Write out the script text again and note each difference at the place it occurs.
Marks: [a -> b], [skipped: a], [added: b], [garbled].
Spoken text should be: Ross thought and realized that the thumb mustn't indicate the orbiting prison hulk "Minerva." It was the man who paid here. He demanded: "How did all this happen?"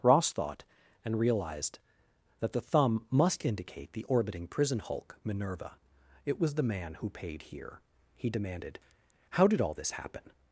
Ross thought and realized that the thumb [mustn't -> must] indicate the orbiting prison hulk "Minerva." It was the man who paid here. He demanded: "How did all this happen?"